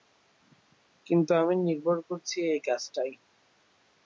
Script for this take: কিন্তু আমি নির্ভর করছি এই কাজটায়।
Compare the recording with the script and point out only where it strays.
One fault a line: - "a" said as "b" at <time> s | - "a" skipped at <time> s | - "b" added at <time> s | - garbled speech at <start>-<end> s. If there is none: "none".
none